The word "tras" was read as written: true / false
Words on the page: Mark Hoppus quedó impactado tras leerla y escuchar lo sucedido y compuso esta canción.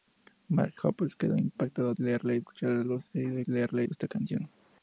false